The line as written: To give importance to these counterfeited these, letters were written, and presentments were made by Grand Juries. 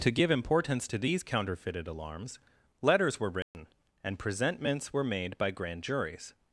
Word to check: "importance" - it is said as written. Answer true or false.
true